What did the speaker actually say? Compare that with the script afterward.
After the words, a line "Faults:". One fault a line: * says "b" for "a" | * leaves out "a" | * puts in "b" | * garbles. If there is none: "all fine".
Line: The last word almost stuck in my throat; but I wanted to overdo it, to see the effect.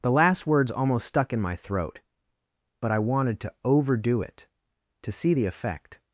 The last words almost stuck in my throat; but I wanted to overdo it, to see the effect.
Faults:
* says "words" for "word"